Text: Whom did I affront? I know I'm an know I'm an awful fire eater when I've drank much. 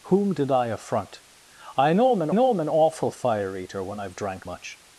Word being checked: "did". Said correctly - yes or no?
yes